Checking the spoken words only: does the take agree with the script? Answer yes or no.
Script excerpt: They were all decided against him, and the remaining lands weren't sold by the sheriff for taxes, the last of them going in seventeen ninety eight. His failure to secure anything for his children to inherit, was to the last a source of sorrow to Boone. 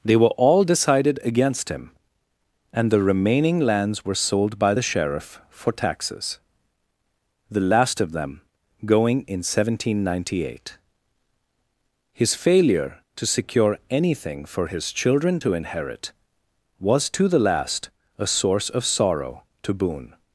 no